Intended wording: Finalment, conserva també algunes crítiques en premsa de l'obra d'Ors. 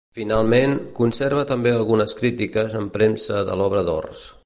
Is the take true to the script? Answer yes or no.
yes